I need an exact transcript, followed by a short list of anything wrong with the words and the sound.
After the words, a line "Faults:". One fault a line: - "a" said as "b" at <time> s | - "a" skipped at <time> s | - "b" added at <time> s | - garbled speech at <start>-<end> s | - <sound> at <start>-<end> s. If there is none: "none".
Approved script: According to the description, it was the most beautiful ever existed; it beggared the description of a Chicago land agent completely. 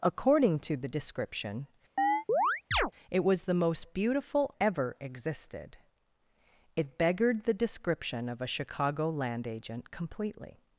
According to the description, it was the most beautiful ever existed; it beggared the description of a Chicago land agent completely.
Faults:
- chirp at 2.0-2.9 s